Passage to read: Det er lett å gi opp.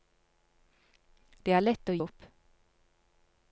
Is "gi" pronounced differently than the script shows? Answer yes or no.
yes